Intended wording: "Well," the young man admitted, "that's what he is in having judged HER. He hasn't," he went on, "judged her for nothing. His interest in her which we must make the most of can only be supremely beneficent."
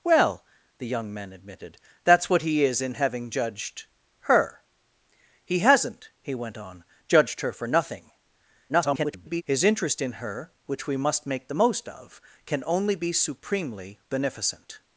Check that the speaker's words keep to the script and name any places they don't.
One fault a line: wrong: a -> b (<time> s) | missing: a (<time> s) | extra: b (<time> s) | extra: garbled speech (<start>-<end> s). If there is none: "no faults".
extra: garbled speech (8.7-9.4 s)